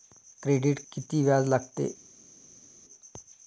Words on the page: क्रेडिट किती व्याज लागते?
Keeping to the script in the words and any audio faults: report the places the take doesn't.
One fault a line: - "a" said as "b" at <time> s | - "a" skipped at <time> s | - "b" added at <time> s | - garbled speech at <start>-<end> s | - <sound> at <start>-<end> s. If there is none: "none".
none